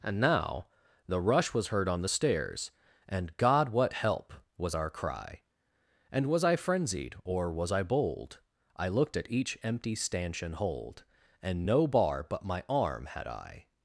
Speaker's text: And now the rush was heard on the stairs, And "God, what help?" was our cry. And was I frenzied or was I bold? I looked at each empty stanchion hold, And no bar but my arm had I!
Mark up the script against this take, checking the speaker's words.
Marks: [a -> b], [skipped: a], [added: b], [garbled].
And now the rush was heard on the stairs, And "God, what help?" was our cry. And was I frenzied or was I bold? I looked at each empty stanchion hold, And no bar but my arm had I!